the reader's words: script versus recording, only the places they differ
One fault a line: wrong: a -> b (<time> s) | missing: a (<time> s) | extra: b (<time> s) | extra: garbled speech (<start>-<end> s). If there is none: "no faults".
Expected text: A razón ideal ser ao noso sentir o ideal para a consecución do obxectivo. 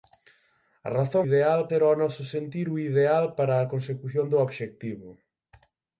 no faults